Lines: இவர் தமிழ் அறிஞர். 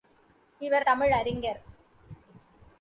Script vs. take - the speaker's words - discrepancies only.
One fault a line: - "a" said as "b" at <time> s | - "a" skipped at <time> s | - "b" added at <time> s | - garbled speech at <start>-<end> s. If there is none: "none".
none